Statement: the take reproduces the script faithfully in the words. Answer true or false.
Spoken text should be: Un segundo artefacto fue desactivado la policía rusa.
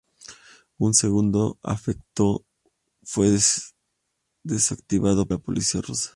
true